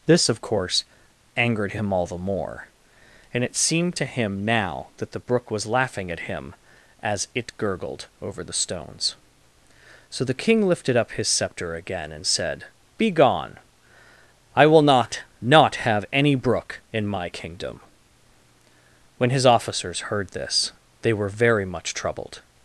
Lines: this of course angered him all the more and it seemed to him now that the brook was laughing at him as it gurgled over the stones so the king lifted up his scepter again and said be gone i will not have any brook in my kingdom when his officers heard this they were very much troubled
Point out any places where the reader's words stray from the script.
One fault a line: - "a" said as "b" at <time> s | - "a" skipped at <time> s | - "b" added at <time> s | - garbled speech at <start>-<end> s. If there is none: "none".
- "not" added at 15.4 s